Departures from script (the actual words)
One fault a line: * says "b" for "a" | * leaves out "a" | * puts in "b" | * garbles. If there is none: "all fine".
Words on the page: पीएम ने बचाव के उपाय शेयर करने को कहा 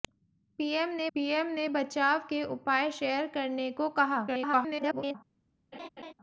* puts in "पीएम ने"
* garbles